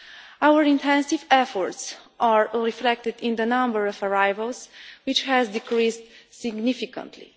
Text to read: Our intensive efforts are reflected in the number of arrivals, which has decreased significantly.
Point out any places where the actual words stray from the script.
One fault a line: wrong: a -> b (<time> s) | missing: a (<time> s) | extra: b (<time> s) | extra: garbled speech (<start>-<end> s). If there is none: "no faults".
no faults